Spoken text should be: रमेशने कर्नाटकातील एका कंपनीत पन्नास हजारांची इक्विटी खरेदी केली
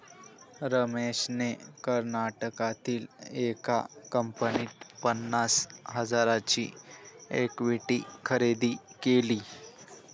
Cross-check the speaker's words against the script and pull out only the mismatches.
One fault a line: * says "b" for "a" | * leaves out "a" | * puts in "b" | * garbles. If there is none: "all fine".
all fine